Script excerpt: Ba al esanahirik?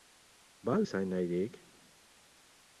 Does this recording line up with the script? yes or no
yes